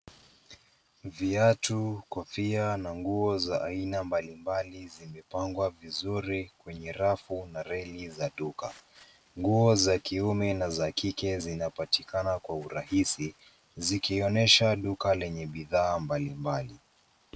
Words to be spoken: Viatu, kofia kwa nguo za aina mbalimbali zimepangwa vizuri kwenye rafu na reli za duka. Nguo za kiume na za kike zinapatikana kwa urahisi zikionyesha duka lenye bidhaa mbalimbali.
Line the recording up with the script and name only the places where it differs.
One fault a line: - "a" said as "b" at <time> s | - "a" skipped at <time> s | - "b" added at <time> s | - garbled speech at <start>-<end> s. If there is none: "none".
- "kwa" said as "na" at 2.8 s